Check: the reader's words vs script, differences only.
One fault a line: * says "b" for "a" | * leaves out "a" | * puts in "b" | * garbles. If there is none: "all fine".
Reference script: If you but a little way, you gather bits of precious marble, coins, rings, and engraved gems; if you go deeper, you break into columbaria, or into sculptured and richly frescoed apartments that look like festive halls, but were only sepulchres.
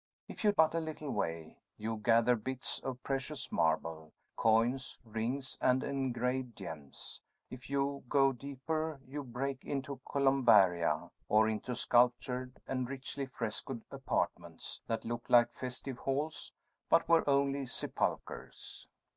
all fine